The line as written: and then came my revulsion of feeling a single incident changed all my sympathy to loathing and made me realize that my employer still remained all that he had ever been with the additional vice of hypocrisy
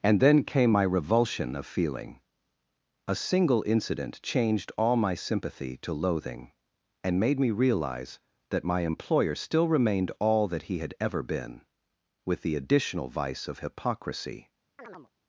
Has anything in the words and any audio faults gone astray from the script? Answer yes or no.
yes